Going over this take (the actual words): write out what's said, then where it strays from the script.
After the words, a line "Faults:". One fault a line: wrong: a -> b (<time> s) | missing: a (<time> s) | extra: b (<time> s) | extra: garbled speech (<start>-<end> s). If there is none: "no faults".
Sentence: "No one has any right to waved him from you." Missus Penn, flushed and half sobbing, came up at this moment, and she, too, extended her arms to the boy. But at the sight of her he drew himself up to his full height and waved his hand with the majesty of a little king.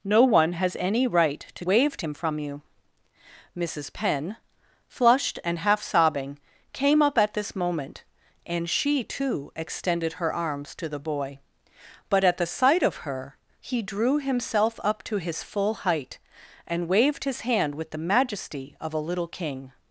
"No one has any right to waved him from you." Missus Penn, flushed and half sobbing, came up at this moment, and she, too, extended her arms to the boy. But at the sight of her he drew himself up to his full height and waved his hand with the majesty of a little king.
Faults:
no faults